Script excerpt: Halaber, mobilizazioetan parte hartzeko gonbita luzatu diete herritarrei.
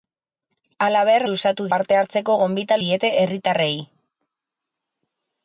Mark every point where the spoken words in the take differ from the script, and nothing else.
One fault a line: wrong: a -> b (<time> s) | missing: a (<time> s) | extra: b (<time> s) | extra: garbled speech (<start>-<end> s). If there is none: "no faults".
wrong: mobilizazioetan -> luzatu (1.3 s)
missing: luzatu (2.8 s)